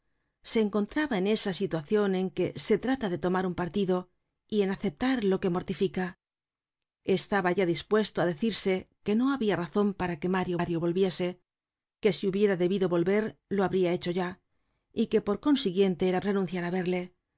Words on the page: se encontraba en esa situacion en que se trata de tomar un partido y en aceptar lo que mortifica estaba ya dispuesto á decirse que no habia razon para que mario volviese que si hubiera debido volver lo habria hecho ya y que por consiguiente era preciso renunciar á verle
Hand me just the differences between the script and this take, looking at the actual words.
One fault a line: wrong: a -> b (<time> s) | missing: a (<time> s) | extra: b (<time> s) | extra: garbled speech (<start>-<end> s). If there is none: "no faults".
extra: mario (10.6 s)
missing: preciso (16.2 s)